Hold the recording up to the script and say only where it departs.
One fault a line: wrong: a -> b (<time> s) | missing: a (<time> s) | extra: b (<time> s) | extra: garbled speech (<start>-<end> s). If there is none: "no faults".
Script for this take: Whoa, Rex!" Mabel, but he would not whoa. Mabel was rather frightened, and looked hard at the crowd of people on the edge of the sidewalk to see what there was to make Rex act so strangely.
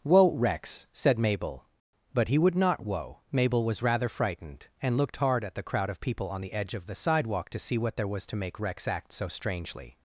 extra: said (0.9 s)